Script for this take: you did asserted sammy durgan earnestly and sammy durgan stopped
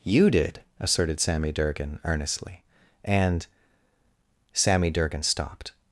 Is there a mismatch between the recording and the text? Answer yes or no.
no